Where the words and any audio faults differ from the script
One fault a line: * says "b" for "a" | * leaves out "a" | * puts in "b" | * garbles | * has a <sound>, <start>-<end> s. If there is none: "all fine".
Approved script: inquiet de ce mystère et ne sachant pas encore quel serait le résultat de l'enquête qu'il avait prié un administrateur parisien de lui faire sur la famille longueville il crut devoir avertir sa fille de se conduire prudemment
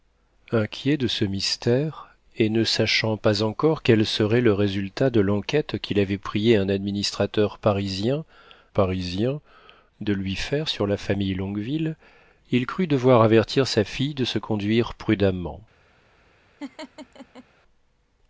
* puts in "parisien"
* has a laugh, 16.6-17.4 s